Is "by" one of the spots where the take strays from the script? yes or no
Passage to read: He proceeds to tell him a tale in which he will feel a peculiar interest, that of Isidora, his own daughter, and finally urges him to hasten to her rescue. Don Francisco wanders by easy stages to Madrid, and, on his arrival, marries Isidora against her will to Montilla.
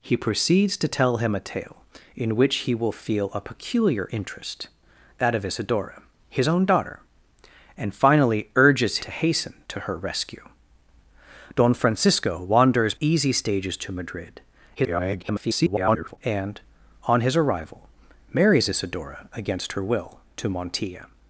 yes